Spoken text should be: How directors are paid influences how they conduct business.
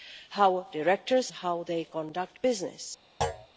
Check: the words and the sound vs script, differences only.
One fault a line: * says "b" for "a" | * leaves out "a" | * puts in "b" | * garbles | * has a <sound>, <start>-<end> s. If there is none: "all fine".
* leaves out "are paid influences"
* has a thud, 3.2-3.5 s